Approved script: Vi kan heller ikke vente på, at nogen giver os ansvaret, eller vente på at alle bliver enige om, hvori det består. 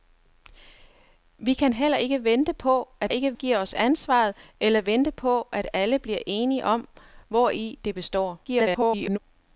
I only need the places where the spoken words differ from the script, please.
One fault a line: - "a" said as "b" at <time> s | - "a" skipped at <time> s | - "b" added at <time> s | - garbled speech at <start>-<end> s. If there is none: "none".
- "nogen" said as "ikke" at 3.1 s
- garbled speech at 8.4-9.2 s